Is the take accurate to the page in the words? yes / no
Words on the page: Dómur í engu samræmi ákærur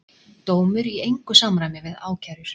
no